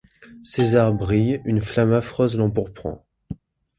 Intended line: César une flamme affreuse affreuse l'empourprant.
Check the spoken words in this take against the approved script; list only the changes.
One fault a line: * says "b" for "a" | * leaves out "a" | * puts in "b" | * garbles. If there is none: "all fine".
* puts in "brille"
* leaves out "affreuse"